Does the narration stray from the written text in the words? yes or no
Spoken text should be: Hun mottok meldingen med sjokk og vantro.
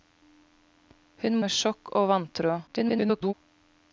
yes